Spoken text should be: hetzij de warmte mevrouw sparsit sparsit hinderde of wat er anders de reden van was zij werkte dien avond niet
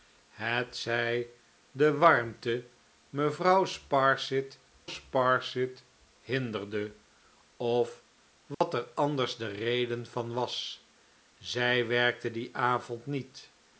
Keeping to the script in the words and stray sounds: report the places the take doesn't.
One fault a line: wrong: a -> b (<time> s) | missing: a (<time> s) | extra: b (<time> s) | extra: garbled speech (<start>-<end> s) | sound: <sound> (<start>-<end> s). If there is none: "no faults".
sound: dropout (8.5-8.6 s)